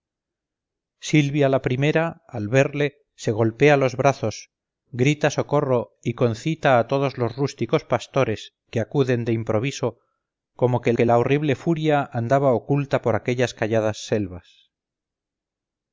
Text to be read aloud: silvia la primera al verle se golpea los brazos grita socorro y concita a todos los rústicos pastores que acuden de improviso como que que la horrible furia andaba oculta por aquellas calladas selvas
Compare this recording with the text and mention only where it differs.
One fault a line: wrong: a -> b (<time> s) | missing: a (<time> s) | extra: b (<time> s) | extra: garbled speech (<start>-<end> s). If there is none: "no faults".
no faults